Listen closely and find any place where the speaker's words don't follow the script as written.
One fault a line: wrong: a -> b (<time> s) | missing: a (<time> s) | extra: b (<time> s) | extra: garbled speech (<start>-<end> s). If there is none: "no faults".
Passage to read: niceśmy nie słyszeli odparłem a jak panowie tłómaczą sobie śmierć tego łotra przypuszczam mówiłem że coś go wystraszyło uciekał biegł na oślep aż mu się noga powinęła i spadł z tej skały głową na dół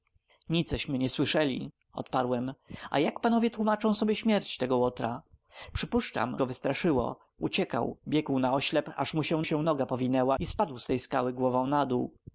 missing: mówiłem że coś (6.4 s)
extra: się (9.4 s)